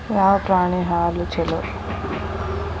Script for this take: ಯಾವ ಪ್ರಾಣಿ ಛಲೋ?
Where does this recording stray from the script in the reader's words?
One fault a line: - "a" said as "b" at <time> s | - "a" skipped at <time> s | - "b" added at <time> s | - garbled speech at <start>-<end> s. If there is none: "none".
- "ಹಾಲು" added at 0.8 s